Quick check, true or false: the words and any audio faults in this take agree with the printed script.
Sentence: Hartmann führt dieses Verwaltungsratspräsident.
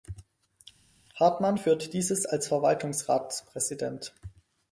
false